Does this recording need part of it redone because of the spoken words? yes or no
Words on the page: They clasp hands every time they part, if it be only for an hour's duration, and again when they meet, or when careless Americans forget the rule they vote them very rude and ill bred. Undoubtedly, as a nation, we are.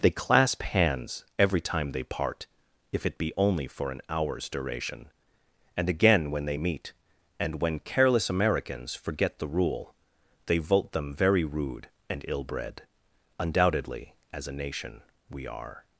yes